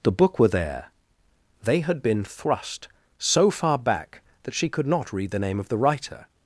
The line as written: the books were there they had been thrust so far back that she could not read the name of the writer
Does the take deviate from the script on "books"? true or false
true